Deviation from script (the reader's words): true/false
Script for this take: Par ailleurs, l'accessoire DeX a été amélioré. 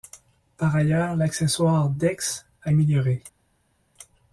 true